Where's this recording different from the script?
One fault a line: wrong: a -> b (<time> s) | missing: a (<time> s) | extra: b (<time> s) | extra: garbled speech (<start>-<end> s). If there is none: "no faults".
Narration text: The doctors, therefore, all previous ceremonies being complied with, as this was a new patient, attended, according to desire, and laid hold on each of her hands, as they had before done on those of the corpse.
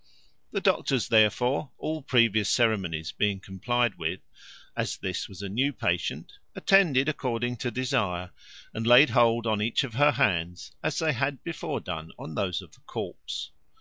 no faults